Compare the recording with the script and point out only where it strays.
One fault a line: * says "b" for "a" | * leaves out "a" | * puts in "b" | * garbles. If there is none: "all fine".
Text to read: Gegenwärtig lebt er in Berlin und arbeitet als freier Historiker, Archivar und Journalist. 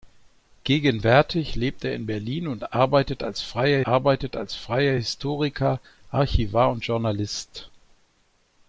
* puts in "arbeitet als freier"